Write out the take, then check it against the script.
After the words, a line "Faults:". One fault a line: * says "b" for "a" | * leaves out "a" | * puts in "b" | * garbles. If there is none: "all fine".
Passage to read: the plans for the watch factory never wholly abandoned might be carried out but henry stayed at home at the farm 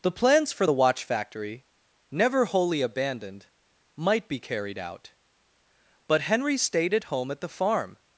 the plans for the watch factory never wholly abandoned might be carried out but henry stayed at home at the farm
Faults:
all fine